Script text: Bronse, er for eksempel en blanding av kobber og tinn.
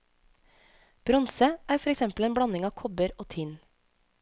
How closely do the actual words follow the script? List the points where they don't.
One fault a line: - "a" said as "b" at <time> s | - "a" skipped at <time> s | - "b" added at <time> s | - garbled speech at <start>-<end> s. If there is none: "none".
none